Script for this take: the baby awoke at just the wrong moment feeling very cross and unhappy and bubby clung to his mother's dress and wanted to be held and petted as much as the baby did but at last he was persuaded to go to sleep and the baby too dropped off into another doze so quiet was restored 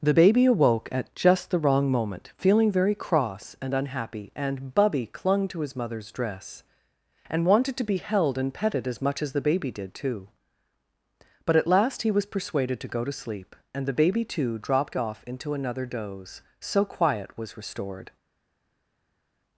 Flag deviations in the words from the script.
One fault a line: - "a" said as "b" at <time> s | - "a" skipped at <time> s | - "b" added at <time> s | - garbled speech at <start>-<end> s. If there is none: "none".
- "too" added at 9.9 s